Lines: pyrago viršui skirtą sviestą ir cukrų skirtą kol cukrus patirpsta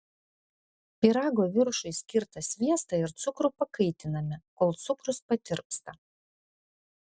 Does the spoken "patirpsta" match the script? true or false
true